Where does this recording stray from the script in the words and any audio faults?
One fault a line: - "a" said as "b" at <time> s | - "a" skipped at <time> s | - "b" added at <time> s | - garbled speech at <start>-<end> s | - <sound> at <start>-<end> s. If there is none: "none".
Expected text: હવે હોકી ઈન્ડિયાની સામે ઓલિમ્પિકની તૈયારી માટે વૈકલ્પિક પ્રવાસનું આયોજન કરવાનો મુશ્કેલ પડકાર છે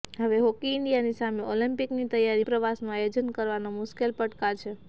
- "માટે વૈકલ્પિક" skipped at 2.5 s